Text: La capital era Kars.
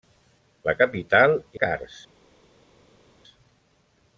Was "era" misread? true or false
true